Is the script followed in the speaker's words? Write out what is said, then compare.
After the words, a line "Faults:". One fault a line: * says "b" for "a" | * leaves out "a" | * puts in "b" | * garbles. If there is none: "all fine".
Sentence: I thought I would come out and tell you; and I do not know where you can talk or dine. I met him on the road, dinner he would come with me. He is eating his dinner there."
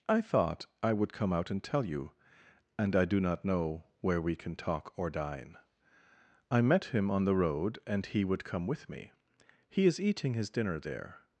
I thought I would come out and tell you; and I do not know where we can talk or dine. I met him on the road, and he would come with me. He is eating his dinner there."
Faults:
* says "we" for "you"
* says "and" for "dinner"